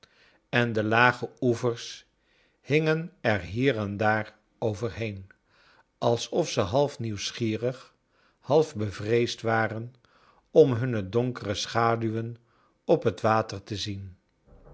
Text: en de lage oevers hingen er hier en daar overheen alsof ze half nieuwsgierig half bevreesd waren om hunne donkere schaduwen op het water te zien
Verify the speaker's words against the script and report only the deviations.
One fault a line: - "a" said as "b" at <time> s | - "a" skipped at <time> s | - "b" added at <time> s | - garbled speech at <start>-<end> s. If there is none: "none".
none